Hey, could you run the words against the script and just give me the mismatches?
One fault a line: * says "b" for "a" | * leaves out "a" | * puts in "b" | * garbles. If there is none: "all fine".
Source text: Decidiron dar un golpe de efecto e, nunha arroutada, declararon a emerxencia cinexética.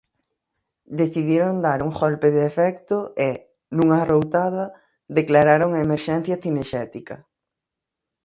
all fine